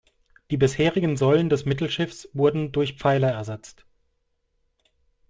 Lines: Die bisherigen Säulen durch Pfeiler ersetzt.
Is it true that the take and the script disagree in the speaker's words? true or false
true